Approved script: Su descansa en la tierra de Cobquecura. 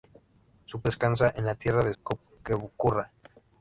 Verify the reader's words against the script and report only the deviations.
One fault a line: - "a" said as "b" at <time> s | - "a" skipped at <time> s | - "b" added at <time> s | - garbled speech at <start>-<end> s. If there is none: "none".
none